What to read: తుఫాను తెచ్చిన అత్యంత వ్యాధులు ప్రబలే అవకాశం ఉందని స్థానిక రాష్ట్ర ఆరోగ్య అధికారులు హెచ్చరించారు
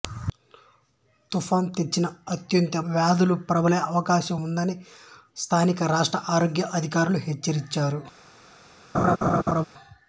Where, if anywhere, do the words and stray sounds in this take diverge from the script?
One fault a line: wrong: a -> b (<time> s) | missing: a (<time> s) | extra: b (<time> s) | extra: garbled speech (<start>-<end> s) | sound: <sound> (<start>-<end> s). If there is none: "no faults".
sound: laugh (8.9-9.6 s)